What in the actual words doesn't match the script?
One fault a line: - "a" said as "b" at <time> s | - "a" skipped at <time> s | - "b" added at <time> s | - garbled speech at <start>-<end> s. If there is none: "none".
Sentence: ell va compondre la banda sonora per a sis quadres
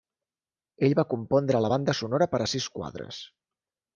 none